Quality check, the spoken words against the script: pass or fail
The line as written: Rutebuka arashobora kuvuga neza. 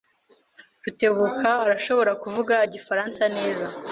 fail